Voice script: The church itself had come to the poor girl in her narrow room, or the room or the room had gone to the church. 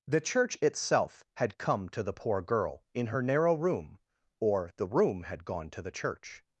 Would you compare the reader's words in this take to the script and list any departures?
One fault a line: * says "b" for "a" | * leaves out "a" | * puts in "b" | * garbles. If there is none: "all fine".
* leaves out "or the room"